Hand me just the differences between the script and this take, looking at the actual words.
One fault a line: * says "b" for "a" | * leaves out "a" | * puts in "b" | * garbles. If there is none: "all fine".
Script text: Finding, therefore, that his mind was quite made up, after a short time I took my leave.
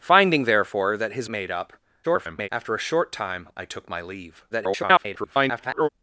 * leaves out "mind was quite"
* garbles
* garbles